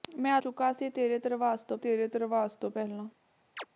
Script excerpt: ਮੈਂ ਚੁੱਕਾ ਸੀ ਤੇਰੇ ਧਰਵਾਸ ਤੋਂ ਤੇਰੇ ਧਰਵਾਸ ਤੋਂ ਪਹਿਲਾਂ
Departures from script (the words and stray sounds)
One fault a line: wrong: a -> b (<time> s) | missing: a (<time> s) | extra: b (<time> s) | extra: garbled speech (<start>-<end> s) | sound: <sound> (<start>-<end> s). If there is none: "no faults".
sound: chirp (3.6-3.7 s)